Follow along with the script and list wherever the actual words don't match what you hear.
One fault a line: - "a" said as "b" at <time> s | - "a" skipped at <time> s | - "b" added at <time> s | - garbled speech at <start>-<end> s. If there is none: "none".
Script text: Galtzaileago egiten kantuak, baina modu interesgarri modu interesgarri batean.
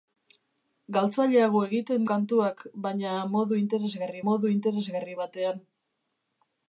none